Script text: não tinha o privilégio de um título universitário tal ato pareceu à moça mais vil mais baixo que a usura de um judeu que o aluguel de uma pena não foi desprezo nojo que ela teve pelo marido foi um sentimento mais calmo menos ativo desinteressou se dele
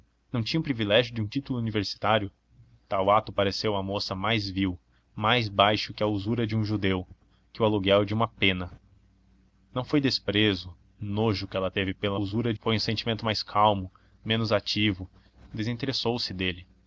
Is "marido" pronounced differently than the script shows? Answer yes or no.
yes